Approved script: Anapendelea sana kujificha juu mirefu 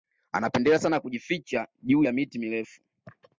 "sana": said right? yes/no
yes